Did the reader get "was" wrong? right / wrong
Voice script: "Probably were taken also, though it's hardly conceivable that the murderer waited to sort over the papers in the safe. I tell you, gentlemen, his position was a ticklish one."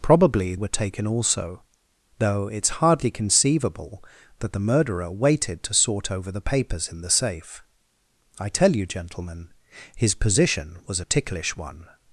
right